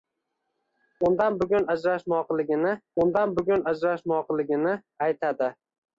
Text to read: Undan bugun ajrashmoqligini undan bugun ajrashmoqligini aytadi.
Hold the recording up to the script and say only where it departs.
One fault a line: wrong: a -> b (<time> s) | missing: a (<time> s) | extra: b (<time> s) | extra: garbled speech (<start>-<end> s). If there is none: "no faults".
no faults